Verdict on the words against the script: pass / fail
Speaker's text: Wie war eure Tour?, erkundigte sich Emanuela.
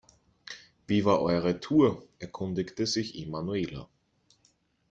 pass